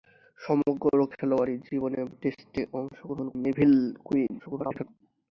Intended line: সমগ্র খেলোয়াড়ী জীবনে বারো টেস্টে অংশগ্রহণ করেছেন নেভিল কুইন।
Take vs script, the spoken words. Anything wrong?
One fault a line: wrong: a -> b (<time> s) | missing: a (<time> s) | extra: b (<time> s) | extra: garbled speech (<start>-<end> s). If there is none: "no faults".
missing: বারো (2.0 s)
missing: করেছেন (3.3 s)
extra: garbled speech (4.4-4.8 s)